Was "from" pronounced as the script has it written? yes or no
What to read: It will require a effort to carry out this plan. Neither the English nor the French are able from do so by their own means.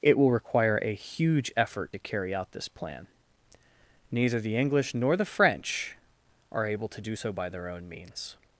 no